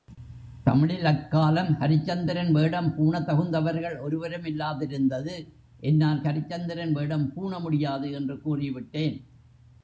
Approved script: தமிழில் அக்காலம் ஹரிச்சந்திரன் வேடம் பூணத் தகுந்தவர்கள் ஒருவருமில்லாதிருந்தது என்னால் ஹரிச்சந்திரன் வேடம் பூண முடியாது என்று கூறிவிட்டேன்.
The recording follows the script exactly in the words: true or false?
true